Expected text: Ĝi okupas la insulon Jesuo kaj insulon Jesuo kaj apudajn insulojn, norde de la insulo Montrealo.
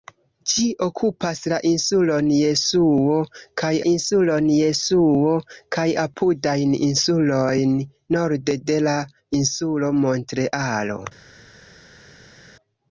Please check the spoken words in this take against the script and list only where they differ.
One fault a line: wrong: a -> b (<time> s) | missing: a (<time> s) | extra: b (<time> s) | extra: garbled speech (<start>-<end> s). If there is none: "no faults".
no faults